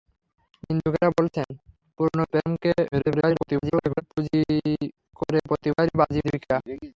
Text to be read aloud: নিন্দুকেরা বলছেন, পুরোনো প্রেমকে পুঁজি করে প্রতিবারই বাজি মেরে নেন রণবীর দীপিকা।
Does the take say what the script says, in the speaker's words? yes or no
no